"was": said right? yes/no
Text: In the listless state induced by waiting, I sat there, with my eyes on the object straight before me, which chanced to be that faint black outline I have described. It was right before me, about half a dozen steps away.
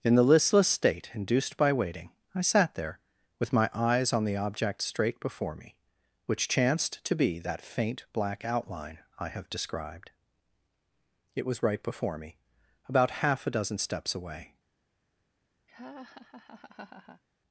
yes